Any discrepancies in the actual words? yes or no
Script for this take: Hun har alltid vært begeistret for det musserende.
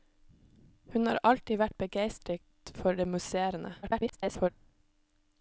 yes